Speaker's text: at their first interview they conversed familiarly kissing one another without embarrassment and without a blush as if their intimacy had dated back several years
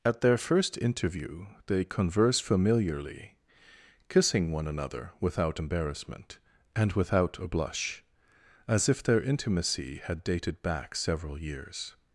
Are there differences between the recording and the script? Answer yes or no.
yes